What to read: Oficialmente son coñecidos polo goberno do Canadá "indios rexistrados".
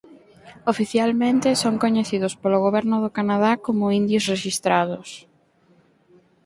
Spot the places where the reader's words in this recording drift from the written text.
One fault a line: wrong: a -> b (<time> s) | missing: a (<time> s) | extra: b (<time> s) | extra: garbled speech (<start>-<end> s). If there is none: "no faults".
extra: como (3.6 s)